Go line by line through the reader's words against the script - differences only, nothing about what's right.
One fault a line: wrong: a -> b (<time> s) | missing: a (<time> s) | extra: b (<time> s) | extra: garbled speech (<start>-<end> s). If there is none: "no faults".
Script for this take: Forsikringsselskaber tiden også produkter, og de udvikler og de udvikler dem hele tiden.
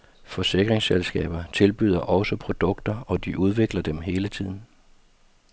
wrong: tiden -> tilbyder (1.5 s)
missing: og de udvikler (3.8 s)